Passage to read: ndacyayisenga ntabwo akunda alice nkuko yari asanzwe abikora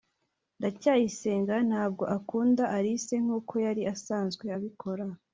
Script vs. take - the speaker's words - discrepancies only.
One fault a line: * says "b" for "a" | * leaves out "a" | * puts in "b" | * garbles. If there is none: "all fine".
all fine